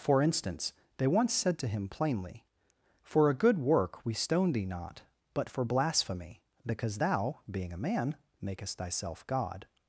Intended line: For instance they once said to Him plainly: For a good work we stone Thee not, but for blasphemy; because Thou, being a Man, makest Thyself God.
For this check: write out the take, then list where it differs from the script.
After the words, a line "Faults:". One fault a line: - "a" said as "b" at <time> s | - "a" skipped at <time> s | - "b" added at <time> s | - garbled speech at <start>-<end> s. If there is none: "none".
For instance they once said to Him plainly: For a good work we stone Thee not, but for blasphemy; because Thou, being a Man, makest Thyself God.
Faults:
none